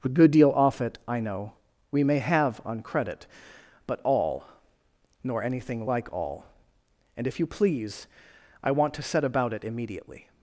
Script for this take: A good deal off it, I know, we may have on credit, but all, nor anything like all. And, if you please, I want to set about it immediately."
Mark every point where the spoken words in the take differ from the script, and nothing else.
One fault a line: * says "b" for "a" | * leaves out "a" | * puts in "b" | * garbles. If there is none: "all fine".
all fine